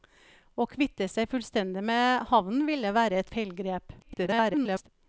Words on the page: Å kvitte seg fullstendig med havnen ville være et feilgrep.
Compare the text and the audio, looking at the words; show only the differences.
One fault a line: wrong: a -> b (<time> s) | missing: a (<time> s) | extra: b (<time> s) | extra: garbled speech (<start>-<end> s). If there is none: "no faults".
extra: garbled speech (4.0-4.9 s)